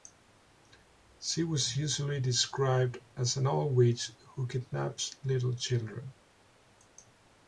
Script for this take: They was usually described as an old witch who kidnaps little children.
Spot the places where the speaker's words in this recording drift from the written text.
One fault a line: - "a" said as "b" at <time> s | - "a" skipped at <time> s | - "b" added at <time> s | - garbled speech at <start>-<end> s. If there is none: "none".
- "They" said as "She" at 1.2 s